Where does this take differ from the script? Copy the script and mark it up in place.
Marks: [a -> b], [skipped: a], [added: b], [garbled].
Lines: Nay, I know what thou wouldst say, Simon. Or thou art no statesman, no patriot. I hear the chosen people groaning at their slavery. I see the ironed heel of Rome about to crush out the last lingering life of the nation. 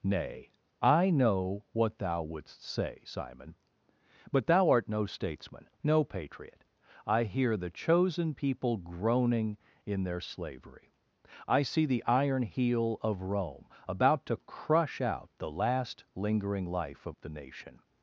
Nay, I know what thou wouldst say, Simon. [Or -> But] thou art no statesman, no patriot. I hear the chosen people groaning [at -> in] their slavery. I see the [ironed -> iron] heel of Rome about to crush out the last lingering life of the nation.